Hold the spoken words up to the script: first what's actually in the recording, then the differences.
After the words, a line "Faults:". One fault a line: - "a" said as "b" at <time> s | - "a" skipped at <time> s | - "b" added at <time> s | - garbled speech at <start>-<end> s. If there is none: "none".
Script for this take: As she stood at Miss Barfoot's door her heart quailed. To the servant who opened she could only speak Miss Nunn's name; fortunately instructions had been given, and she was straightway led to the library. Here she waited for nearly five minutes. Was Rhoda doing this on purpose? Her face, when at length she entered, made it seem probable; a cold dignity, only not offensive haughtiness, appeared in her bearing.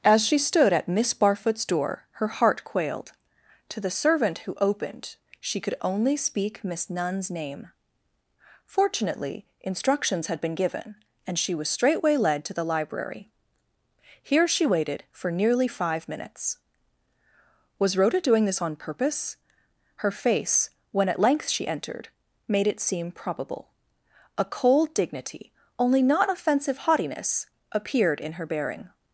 As she stood at Miss Barfoot's door her heart quailed. To the servant who opened she could only speak Miss Nunn's name; fortunately instructions had been given, and she was straightway led to the library. Here she waited for nearly five minutes. Was Rhoda doing this on purpose? Her face, when at length she entered, made it seem probable; a cold dignity, only not offensive haughtiness, appeared in her bearing.
Faults:
none